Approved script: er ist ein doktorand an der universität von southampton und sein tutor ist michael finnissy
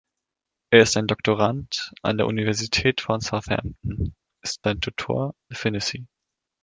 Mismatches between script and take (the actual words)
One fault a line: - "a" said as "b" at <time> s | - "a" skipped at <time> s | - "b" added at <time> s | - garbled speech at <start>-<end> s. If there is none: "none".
- "und" said as "ist" at 4.4 s
- "ist michael" skipped at 5.3 s